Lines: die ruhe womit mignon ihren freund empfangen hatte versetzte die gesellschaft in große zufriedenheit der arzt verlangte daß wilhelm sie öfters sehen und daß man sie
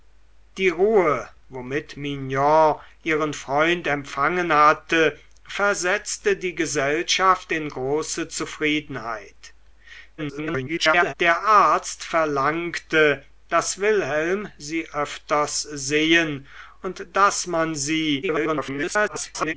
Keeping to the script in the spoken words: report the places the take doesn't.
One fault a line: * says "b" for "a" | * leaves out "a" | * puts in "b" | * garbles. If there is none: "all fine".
* garbles
* garbles